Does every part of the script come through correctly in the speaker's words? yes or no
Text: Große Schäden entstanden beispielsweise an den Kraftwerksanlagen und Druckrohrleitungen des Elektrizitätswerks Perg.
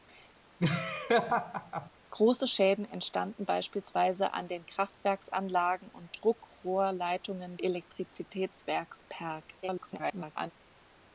no